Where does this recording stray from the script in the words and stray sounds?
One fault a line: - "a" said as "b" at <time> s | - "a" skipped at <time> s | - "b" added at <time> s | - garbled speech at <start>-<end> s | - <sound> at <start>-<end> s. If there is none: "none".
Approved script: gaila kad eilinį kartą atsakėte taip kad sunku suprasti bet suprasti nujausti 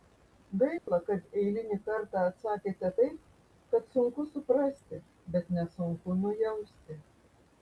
- dropout at 0.8-0.9 s
- "suprasti" said as "nesunku" at 5.6 s